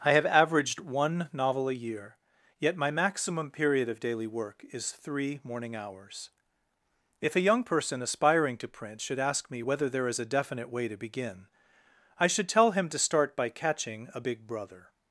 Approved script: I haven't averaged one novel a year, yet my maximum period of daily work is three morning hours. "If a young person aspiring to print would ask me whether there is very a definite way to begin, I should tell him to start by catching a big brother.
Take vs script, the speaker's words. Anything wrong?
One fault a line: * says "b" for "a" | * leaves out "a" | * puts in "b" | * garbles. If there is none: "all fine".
* says "have" for "haven't"
* says "should" for "would"
* leaves out "very"